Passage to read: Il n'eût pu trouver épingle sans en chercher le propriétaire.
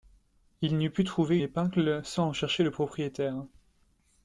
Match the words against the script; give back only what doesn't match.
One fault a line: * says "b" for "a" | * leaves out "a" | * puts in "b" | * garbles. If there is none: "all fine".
all fine